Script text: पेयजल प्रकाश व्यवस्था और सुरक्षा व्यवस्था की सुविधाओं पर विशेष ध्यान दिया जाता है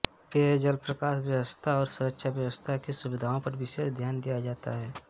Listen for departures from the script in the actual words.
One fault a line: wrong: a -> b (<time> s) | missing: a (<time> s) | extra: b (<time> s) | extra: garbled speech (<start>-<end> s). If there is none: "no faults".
no faults